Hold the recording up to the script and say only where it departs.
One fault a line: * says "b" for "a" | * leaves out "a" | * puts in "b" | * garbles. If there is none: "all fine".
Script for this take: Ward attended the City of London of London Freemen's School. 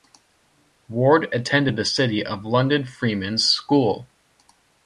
* leaves out "of London"